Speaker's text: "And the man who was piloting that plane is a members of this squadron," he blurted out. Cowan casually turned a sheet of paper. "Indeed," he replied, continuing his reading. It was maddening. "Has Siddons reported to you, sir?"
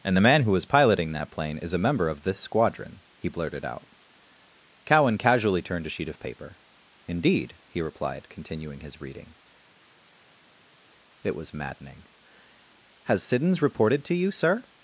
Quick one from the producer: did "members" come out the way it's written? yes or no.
no